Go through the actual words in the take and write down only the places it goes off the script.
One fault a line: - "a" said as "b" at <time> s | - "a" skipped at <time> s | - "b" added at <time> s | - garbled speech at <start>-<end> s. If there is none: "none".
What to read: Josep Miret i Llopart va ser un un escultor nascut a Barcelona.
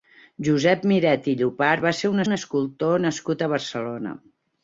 none